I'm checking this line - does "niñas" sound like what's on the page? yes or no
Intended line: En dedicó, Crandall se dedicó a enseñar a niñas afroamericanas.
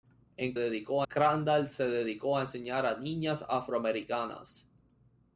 yes